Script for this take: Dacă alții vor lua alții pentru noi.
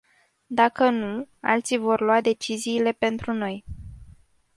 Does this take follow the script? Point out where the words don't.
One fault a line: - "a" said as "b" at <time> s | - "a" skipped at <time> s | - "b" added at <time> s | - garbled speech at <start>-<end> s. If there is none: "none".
- "nu" added at 0.9 s
- "alții" said as "deciziile" at 2.2 s